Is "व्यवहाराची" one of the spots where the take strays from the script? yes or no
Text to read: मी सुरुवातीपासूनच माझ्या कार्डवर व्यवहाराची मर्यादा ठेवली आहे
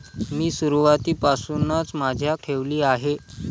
yes